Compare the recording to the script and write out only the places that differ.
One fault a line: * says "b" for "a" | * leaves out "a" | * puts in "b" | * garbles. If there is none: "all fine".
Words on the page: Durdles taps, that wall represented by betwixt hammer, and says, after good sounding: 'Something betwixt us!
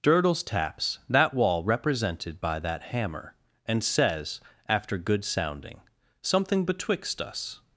* says "that" for "betwixt"